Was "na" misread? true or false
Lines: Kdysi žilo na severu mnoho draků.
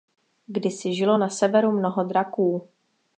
false